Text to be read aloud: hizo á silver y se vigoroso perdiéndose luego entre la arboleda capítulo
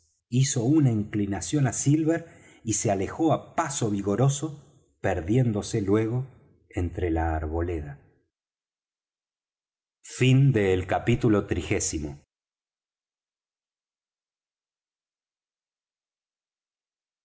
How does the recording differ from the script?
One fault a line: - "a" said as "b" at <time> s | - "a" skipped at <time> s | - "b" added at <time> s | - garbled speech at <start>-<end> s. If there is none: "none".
- "una inclinación" added at 0.8 s
- "alejó á paso" added at 2.9 s